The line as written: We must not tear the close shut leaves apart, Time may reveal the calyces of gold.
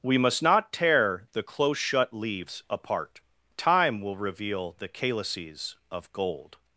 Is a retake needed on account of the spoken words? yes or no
yes